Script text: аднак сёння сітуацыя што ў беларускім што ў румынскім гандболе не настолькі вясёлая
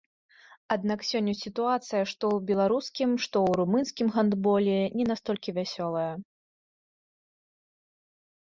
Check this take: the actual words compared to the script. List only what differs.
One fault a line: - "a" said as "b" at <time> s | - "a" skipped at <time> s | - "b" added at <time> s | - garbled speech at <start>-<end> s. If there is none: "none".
none